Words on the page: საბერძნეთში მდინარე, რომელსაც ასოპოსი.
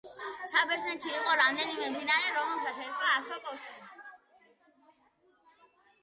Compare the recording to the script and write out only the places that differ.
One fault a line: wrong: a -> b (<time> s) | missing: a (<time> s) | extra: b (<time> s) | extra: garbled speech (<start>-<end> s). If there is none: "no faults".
extra: იყო რამდენიმე (1.2 s)
extra: ერქვა (2.8 s)